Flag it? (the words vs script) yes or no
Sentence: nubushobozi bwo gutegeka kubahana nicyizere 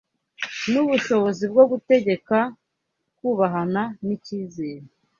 no